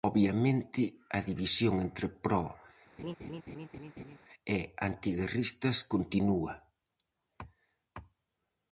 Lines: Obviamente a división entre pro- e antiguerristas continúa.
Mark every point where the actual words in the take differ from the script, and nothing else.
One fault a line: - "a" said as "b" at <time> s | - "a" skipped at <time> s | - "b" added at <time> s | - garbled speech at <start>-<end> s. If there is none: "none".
none